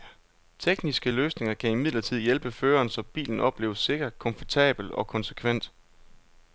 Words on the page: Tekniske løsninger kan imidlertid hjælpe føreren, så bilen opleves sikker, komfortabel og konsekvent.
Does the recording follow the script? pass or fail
pass